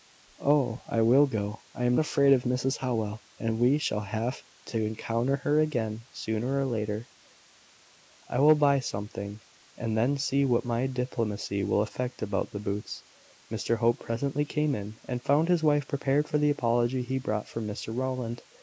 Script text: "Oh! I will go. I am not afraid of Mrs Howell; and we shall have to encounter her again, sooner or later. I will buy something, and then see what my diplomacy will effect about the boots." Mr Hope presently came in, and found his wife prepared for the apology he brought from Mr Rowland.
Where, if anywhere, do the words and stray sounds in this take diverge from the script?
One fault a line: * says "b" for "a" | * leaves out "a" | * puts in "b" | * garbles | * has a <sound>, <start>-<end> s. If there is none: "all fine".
* leaves out "not"